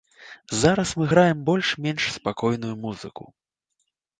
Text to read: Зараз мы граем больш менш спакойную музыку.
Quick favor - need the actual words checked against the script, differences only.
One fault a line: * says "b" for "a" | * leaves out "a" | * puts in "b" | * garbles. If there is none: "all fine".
all fine